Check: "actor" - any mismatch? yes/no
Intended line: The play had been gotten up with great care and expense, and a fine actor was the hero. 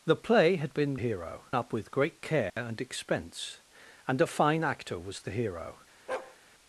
no